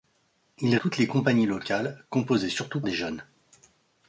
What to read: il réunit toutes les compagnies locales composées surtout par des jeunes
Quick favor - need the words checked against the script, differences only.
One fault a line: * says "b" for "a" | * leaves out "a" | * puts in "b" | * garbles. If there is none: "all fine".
* leaves out "réunit"
* leaves out "par"